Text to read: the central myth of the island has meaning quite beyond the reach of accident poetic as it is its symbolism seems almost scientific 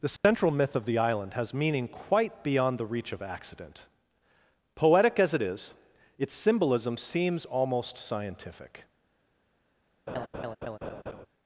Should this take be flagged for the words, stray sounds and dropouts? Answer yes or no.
yes